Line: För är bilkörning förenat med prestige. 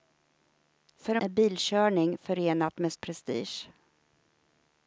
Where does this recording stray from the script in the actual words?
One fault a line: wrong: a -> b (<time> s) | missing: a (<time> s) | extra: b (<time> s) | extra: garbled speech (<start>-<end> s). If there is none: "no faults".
no faults